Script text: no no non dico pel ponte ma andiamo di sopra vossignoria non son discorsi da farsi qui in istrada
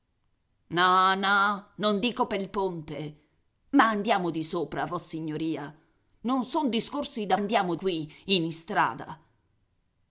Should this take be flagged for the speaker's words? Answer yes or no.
yes